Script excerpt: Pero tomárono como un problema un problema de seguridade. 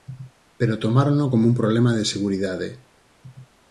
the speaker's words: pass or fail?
fail